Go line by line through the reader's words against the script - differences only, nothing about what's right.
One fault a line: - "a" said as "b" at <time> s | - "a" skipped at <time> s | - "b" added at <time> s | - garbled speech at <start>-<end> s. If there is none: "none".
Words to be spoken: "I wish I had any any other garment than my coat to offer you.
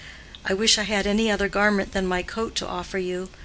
- "any" skipped at 1.3 s